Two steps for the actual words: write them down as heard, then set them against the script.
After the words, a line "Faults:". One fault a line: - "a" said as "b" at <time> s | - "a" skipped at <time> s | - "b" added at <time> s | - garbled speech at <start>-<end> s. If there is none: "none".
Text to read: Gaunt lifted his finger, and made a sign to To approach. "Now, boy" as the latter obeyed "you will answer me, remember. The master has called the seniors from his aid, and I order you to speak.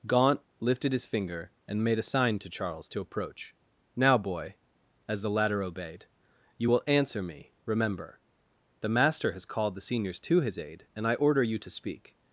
Gaunt lifted his finger, and made a sign to Charles to approach. "Now, boy" as the latter obeyed "you will answer me, remember. The master has called the seniors to his aid, and I order you to speak.
Faults:
- "Charles" added at 2.5 s
- "from" said as "to" at 10.2 s